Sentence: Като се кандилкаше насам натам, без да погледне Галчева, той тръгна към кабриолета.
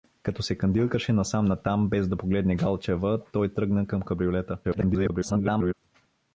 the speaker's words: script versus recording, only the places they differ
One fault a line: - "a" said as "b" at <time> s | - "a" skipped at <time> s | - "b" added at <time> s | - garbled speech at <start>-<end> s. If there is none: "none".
- garbled speech at 4.6-5.7 s